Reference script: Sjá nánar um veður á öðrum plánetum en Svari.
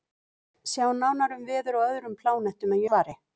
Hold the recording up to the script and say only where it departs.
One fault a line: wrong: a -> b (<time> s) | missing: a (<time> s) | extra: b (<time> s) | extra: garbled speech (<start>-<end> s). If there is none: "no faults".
no faults